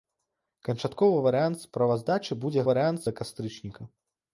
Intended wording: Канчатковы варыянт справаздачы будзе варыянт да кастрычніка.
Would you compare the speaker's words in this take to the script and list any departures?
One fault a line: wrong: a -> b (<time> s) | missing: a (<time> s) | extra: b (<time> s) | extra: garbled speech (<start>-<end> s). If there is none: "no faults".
no faults